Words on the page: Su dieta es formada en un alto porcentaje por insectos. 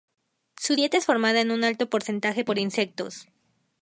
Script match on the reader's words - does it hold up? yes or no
yes